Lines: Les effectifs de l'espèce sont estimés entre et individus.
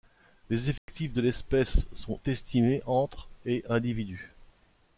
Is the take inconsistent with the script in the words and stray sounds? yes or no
yes